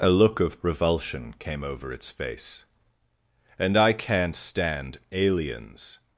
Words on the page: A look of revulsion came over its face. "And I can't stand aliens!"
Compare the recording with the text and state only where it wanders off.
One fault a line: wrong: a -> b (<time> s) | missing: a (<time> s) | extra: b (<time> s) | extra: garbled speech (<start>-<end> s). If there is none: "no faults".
no faults